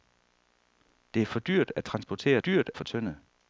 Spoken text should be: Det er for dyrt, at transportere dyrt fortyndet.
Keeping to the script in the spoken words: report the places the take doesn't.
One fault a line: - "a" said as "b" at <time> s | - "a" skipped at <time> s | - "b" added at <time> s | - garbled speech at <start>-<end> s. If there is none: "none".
none